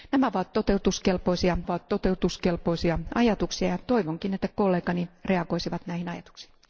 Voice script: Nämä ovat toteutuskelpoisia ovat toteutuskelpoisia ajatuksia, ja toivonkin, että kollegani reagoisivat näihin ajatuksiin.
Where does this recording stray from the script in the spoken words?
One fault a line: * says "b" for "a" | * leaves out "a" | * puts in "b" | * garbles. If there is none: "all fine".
all fine